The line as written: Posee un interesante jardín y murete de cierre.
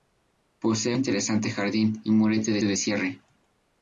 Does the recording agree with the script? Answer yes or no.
no